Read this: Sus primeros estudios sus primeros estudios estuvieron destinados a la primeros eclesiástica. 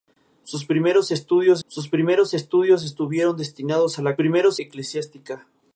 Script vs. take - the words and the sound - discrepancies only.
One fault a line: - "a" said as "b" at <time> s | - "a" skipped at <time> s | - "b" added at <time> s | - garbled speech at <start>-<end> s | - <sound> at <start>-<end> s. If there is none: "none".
none